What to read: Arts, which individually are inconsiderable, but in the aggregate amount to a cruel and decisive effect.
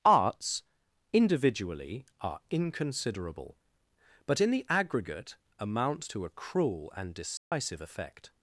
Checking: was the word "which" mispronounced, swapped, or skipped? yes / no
yes